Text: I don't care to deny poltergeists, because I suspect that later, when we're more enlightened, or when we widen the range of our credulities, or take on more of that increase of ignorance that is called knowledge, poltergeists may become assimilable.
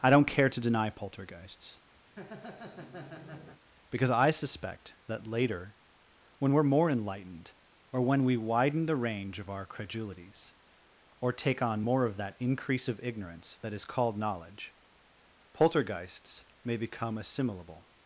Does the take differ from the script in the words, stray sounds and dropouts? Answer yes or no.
yes